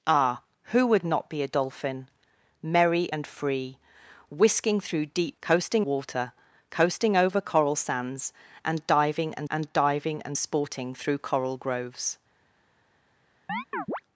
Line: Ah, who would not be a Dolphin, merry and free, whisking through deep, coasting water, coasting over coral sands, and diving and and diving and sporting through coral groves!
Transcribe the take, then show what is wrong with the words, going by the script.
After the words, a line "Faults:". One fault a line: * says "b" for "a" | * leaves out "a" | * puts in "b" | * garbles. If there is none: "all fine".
Ah, who would not be a Dolphin, merry and free, whisking through deep, coasting water, coasting over coral sands, and diving and and diving and sporting through coral groves!
Faults:
all fine